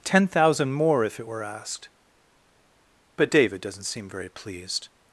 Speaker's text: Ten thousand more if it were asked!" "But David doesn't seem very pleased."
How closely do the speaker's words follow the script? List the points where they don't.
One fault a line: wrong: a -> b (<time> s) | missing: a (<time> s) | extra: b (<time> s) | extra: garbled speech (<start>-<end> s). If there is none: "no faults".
no faults